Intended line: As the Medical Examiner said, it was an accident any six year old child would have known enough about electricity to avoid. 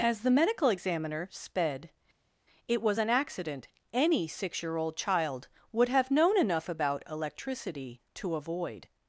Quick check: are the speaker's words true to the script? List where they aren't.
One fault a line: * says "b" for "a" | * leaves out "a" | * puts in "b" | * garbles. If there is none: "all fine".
* says "sped" for "said"